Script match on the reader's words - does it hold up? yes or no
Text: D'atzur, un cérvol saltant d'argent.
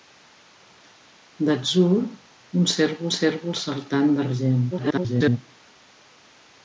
no